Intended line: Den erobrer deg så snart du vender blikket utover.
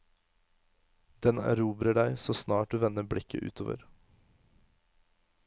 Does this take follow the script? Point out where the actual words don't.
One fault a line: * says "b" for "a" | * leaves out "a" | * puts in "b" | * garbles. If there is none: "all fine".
all fine